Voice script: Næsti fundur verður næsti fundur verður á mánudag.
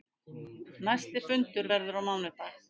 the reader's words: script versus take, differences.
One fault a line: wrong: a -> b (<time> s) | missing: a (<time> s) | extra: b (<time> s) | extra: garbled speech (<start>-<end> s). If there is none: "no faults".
missing: næsti fundur verður (2.0 s)